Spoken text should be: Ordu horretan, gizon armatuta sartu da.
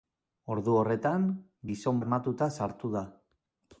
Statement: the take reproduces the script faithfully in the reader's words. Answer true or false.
true